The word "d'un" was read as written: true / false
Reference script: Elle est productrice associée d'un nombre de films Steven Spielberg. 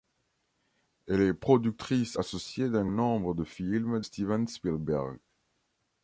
true